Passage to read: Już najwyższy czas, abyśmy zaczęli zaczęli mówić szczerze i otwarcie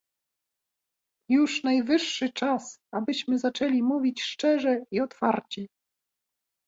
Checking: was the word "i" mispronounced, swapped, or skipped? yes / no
no